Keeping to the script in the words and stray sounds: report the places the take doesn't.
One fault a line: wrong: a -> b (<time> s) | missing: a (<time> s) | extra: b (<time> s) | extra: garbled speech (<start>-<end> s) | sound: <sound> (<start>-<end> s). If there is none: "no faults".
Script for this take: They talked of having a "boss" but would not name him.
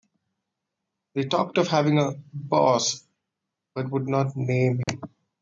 sound: dropout (4.8-4.9 s)